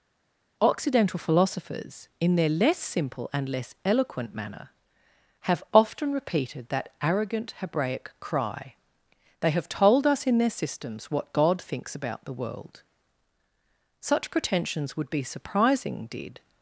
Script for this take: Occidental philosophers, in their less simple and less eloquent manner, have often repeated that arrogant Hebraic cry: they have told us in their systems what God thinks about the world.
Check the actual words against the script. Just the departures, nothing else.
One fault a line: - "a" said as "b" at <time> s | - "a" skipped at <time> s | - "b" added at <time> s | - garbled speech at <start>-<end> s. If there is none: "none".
- "Such pretensions would be surprising did" added at 14.0 s